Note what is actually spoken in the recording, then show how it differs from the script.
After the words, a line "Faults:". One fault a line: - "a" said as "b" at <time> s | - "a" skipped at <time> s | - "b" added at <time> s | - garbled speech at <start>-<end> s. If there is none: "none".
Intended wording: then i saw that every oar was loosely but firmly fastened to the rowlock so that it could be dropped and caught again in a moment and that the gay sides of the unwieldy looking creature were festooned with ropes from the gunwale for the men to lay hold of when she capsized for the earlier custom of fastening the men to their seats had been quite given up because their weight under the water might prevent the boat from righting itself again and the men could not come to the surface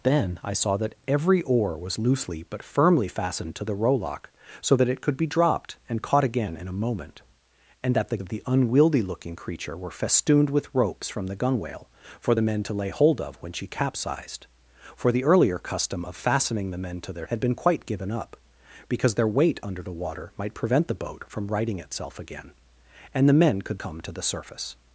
then i saw that every oar was loosely but firmly fastened to the rowlock so that it could be dropped and caught again in a moment and that the of the unwieldy looking creature were festooned with ropes from the gunwale for the men to lay hold of when she capsized for the earlier custom of fastening the men to their had been quite given up because their weight under the water might prevent the boat from righting itself again and the men could come to the surface
Faults:
- "gay sides" skipped at 8.2 s
- "seats" skipped at 17.3 s
- "not" skipped at 23.8 s